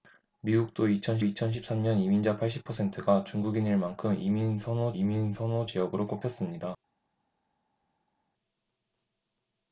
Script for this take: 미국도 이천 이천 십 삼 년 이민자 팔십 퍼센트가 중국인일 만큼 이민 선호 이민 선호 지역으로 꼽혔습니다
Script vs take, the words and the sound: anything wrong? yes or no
no